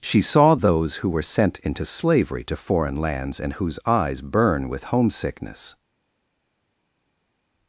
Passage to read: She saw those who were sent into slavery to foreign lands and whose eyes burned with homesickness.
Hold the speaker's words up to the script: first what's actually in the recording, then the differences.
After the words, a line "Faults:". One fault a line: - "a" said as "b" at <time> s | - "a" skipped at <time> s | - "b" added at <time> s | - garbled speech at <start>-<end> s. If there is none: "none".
She saw those who were sent into slavery to foreign lands and whose eyes burn with homesickness.
Faults:
- "burned" said as "burn" at 4.2 s